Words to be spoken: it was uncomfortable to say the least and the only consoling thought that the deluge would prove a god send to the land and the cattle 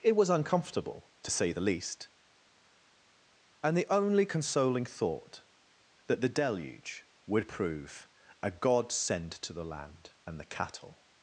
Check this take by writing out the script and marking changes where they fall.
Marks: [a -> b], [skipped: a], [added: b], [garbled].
it was uncomfortable to say the least and the only consoling thought that the deluge would prove a god send to the land and the cattle